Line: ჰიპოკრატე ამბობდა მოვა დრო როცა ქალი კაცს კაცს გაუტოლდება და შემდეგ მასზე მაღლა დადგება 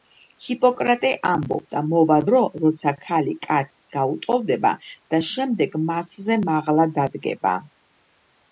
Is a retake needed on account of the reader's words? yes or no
yes